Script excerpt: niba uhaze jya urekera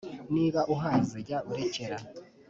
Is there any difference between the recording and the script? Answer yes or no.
no